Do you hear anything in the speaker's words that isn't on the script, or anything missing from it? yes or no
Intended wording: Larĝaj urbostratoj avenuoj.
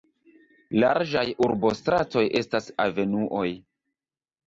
yes